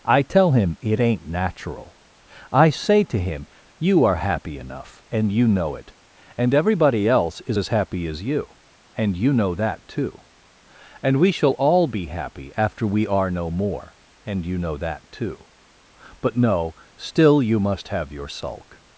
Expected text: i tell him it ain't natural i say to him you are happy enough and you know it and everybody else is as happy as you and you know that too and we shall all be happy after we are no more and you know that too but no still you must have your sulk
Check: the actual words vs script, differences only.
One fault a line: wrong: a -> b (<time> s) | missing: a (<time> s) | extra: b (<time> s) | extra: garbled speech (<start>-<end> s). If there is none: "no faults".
no faults